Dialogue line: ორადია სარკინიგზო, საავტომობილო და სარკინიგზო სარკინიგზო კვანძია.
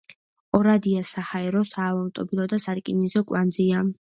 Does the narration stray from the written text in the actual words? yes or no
yes